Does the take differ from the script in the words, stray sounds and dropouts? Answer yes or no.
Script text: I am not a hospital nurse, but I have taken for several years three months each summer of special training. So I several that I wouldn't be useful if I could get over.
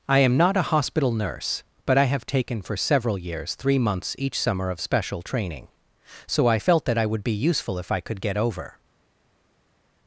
yes